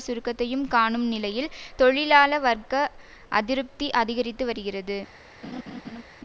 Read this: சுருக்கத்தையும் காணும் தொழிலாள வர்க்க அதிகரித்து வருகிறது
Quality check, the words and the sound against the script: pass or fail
fail